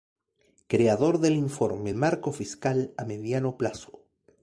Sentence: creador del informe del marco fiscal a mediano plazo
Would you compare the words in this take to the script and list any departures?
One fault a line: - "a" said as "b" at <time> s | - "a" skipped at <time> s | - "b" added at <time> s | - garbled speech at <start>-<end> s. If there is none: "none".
- "del" skipped at 1.9 s